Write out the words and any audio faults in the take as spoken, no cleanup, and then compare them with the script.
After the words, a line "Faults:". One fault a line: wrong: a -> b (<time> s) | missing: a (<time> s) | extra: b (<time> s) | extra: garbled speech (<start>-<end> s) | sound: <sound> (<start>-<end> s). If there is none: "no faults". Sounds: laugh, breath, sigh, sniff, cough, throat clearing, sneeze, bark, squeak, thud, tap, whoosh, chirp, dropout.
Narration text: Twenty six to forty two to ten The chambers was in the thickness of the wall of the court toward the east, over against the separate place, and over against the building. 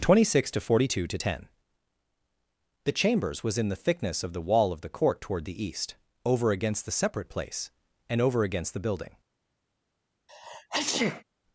Twenty six to forty two to ten The chambers was in the thickness of the wall of the court toward the east, over against the separate place, and over against the building.
Faults:
sound: sneeze (10.3-11.2 s)